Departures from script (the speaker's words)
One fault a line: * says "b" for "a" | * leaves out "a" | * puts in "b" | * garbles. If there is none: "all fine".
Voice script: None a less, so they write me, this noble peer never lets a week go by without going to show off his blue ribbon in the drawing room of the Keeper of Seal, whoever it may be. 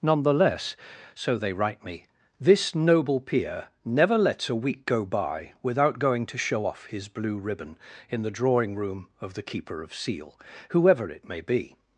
* says "the" for "a"